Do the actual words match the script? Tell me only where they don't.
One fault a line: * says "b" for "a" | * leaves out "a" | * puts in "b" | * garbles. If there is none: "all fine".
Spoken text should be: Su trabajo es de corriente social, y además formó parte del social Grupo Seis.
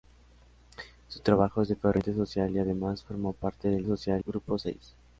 all fine